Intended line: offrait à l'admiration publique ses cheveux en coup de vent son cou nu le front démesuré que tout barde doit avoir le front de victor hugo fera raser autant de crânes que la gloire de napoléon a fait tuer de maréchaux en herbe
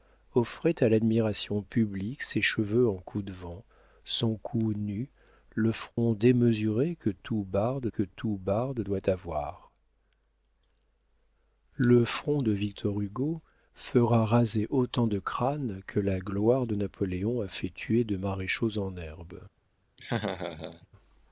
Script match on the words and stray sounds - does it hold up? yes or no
no